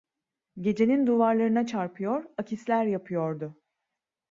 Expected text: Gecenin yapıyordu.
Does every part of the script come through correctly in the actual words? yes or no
no